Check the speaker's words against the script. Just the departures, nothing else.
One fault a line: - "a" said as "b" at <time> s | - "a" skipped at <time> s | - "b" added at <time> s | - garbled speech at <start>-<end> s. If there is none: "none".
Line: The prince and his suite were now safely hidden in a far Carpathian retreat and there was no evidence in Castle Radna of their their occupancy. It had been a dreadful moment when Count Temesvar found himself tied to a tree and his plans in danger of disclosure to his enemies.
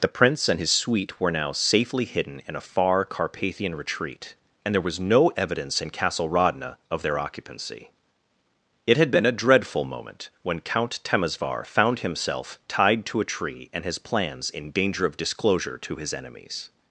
- "their" skipped at 7.2 s